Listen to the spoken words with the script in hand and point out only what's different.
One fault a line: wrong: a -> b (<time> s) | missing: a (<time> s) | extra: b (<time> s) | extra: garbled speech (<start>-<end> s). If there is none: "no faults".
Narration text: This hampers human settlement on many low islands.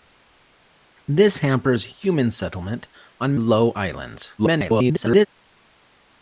missing: many (3.4 s)
extra: garbled speech (4.4-5.3 s)